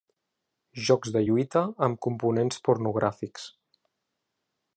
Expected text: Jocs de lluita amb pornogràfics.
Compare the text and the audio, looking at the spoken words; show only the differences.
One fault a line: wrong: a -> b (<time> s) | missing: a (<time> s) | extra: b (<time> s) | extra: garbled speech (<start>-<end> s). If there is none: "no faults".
extra: components (2.1 s)